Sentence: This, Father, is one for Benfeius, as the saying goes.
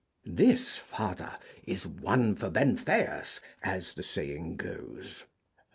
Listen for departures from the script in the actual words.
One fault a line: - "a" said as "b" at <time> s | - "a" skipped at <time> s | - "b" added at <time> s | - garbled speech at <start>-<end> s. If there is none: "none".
none